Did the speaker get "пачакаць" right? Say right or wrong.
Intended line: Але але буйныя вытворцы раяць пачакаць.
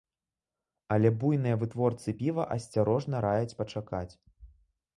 right